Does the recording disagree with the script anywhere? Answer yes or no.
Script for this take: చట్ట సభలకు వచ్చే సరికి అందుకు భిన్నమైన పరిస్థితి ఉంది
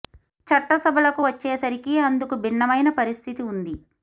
no